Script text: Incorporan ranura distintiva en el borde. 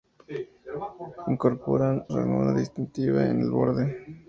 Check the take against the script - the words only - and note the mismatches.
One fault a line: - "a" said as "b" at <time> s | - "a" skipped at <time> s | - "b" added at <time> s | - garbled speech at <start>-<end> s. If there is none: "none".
none